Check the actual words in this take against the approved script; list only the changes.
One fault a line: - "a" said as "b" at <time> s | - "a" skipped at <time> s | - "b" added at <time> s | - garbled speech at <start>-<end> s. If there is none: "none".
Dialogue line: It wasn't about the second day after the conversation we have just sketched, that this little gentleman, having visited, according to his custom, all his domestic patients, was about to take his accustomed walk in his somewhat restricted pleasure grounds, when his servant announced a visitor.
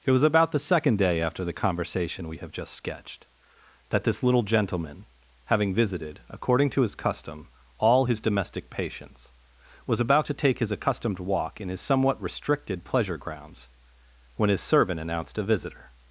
- "wasn't" said as "was" at 0.1 s